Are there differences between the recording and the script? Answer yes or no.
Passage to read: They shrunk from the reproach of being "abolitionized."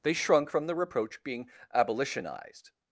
yes